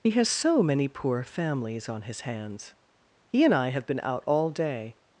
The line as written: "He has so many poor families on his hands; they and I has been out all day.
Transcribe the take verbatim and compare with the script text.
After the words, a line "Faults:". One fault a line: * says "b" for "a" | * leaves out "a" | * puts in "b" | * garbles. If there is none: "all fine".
"He has so many poor families on his hands; he and I have been out all day.
Faults:
* says "he" for "they"
* says "have" for "has"